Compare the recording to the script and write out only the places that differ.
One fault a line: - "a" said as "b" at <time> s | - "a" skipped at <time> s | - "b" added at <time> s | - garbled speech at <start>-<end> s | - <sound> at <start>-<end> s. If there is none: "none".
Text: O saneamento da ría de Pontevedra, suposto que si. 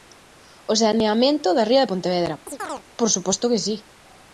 - chirp at 2.5-2.8 s
- "por" added at 3.0 s